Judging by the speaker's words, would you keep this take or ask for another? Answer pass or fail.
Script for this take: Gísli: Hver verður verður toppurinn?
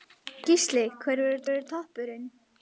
pass